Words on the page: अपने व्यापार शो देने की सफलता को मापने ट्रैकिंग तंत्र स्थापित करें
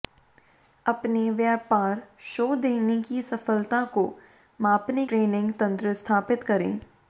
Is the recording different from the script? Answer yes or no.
no